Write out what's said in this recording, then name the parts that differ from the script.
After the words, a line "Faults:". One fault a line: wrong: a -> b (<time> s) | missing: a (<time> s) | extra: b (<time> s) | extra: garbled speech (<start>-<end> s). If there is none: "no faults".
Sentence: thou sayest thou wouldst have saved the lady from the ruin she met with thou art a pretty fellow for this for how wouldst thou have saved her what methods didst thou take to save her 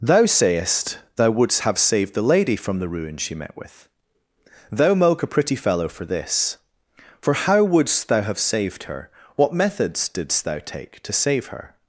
thou sayest thou wouldst have saved the lady from the ruin she met with thou moke a pretty fellow for this for how wouldst thou have saved her what methods didst thou take to save her
Faults:
wrong: art -> moke (4.9 s)